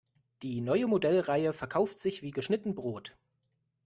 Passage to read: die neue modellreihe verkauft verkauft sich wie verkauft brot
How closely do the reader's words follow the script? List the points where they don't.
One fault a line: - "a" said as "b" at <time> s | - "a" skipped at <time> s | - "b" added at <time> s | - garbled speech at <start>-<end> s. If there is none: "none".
- "verkauft" skipped at 2.0 s
- "verkauft" said as "geschnitten" at 2.3 s